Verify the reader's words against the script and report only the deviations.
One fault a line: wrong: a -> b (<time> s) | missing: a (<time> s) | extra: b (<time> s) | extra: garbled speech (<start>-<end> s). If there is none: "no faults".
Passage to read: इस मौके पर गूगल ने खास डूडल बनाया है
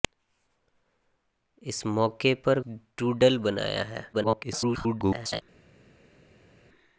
missing: गूगल ने खास (2.6 s)
extra: garbled speech (4.1-5.4 s)